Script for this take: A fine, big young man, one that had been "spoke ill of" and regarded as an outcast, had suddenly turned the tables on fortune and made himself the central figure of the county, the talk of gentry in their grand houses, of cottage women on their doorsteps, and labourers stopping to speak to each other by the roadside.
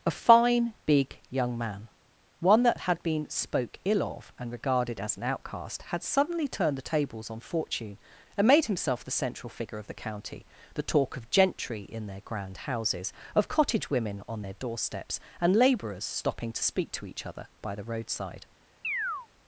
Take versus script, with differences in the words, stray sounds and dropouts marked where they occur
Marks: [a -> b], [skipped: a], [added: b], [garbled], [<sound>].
A fine, big young man, one that had been "spoke ill of" and regarded as an outcast, had suddenly turned the tables on fortune and made himself the central figure of the county, the talk of gentry in their grand houses, of cottage women on their doorsteps, and labourers stopping to speak to each other by the roadside. [chirp]